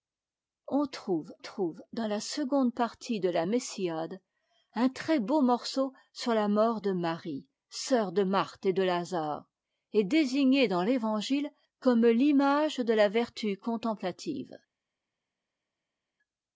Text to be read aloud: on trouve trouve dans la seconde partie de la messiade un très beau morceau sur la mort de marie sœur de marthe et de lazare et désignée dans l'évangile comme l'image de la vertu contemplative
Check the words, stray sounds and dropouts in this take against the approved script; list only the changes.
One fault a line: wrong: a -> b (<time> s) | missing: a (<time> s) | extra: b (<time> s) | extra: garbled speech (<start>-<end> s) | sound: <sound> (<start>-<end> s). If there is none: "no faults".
no faults